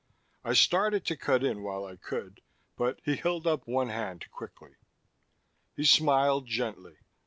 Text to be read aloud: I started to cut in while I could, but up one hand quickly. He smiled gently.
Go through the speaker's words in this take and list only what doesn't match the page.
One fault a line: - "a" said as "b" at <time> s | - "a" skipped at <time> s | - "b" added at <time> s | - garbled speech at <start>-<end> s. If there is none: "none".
- "he held" added at 3.0 s